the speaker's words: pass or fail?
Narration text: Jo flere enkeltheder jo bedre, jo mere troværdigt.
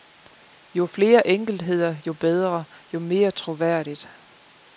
pass